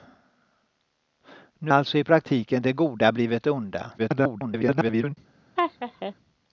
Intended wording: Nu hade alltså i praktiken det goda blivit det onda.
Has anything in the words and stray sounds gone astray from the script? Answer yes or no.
yes